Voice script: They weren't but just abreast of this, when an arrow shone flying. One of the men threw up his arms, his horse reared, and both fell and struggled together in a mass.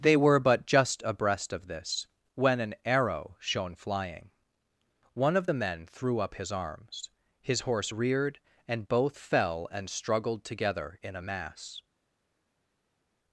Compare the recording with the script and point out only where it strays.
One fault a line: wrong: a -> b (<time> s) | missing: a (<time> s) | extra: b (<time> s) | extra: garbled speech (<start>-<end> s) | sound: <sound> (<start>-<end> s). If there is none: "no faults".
wrong: weren't -> were (0.2 s)